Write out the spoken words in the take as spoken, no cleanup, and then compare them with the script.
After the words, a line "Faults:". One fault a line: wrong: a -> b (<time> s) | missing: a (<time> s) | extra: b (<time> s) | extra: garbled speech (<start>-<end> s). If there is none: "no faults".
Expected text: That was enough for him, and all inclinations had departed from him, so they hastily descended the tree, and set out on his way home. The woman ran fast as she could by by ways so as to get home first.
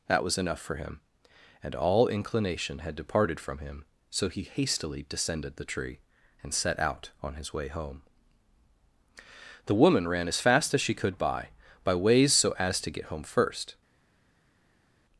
That was enough for him, and all inclination had departed from him, so he hastily descended the tree, and set out on his way home. The woman ran as fast as she could by by ways so as to get home first.
Faults:
wrong: inclinations -> inclination (2.1 s)
wrong: they -> he (4.3 s)
extra: as (10.3 s)